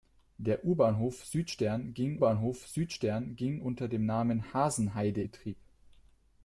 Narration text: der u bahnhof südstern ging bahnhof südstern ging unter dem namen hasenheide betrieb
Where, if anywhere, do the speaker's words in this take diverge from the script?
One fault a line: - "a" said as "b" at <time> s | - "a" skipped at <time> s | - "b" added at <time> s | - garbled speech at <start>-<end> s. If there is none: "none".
none